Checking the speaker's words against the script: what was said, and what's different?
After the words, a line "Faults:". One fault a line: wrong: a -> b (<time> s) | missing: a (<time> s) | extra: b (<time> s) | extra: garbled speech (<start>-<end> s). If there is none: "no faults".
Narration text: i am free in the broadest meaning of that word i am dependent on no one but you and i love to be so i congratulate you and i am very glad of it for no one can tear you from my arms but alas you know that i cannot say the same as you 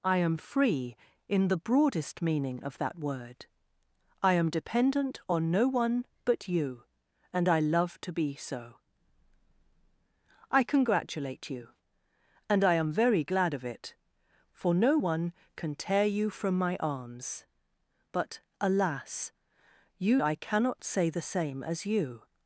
i am free in the broadest meaning of that word i am dependent on no one but you and i love to be so i congratulate you and i am very glad of it for no one can tear you from my arms but alas you i cannot say the same as you
Faults:
missing: know that (20.2 s)